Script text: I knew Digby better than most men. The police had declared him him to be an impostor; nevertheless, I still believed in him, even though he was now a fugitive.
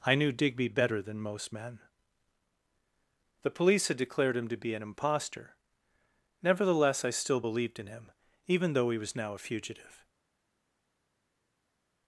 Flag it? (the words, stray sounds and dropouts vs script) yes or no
yes